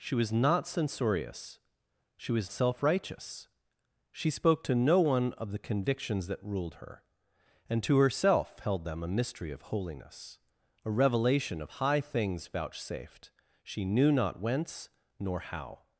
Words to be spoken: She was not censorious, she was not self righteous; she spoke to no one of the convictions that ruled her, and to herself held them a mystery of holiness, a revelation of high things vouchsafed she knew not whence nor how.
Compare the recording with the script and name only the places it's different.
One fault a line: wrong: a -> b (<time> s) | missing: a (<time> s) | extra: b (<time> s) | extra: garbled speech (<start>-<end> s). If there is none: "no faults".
missing: not (2.5 s)